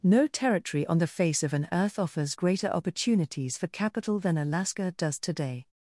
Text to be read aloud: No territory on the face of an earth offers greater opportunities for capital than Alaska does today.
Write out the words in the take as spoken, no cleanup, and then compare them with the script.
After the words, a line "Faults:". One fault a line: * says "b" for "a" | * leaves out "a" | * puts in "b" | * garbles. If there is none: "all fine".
No territory on the face of an earth offers greater opportunities for capital than Alaska does today.
Faults:
all fine